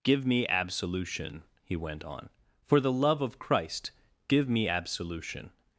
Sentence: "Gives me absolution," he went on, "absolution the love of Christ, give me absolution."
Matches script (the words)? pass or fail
fail